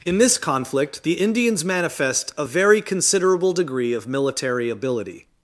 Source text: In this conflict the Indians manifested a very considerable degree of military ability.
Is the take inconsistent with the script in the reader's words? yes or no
yes